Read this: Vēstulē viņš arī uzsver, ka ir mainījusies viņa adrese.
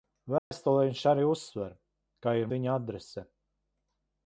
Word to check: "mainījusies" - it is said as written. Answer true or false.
false